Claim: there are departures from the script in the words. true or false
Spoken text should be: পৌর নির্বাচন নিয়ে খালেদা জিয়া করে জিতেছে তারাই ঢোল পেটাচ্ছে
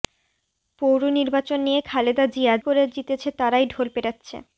false